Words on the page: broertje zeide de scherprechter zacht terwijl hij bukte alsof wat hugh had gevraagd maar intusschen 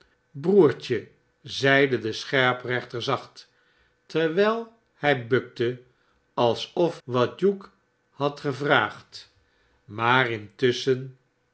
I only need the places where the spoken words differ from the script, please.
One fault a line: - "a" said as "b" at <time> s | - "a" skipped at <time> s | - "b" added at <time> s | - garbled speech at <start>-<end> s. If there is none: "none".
none